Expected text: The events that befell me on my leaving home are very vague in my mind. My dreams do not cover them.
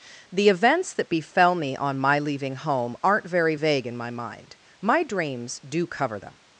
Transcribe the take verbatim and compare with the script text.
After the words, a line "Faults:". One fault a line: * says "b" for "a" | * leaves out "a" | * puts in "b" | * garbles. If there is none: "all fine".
The events that befell me on my leaving home aren't very vague in my mind. My dreams do cover them.
Faults:
* says "aren't" for "are"
* leaves out "not"